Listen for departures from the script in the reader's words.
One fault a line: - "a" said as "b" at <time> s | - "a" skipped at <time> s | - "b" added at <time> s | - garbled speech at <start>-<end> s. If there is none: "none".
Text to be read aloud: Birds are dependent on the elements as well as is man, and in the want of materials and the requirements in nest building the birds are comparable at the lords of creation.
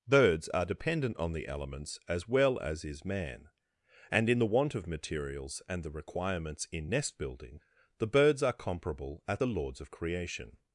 none